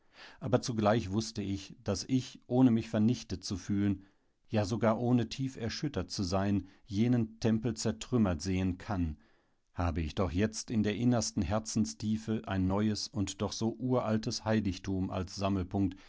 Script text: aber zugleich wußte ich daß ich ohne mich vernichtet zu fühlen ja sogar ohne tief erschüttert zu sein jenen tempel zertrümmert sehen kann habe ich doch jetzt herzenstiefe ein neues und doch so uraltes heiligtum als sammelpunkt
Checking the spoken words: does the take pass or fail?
fail